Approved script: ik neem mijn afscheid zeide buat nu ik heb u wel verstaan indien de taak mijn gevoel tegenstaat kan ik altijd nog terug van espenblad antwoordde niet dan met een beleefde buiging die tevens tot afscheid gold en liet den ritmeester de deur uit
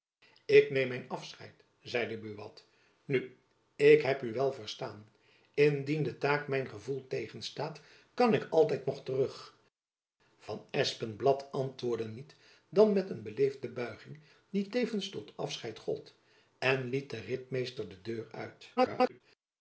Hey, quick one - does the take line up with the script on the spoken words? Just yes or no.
no